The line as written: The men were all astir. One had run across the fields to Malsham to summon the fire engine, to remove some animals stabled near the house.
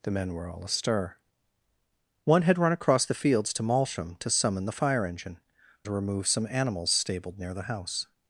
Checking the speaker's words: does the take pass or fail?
pass